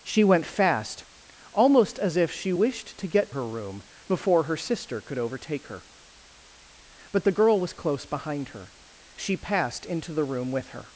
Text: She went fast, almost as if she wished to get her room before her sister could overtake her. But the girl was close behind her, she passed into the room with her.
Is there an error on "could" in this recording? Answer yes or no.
no